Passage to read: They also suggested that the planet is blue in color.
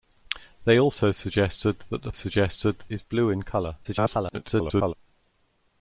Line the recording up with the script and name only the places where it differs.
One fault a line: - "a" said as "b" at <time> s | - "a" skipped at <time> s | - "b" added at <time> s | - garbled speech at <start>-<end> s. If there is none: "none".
- "planet" said as "suggested" at 2.1 s
- garbled speech at 3.8-4.9 s